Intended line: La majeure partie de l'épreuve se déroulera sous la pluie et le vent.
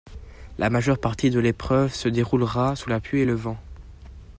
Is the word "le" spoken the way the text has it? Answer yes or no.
yes